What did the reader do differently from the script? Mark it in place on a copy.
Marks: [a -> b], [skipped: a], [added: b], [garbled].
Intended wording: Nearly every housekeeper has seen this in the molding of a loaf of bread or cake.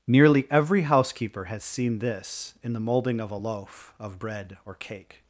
Nearly every housekeeper has seen this in the molding of a loaf of bread or cake.